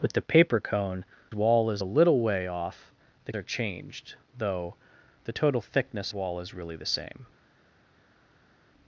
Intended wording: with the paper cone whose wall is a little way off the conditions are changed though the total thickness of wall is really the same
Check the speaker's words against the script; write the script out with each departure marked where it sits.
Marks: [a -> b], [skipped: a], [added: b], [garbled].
with the paper cone [skipped: whose] wall is a little way off the [skipped: conditions] are changed though the total thickness [skipped: of] wall is really the same